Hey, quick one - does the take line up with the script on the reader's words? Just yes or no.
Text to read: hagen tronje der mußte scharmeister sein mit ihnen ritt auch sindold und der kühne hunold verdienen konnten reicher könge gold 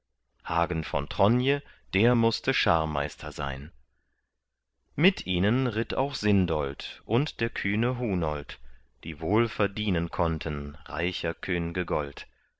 no